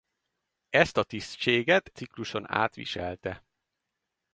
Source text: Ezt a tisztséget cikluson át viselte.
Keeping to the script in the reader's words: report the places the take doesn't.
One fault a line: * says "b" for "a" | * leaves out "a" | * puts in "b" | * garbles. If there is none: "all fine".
all fine